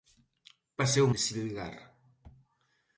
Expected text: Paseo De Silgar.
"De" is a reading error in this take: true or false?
false